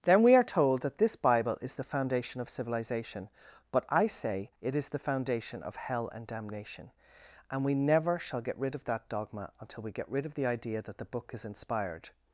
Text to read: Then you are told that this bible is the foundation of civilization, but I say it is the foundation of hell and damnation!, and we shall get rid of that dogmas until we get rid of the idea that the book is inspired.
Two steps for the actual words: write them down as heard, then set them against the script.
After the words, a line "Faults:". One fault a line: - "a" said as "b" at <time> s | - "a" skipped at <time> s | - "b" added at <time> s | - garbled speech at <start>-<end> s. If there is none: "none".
Then we are told that this bible is the foundation of civilization, but I say it is the foundation of hell and damnation!, and we never shall get rid of that dogma until we get rid of the idea that the book is inspired.
Faults:
- "you" said as "we" at 0.2 s
- "never" added at 7.7 s
- "dogmas" said as "dogma" at 9.1 s